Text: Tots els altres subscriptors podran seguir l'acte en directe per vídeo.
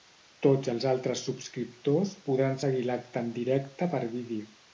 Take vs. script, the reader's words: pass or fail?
pass